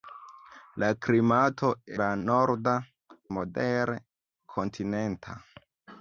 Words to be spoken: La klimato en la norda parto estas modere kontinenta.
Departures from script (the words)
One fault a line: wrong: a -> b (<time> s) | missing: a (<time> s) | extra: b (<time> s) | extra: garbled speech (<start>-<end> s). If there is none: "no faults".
missing: en (1.7 s)
missing: parto estas (2.7 s)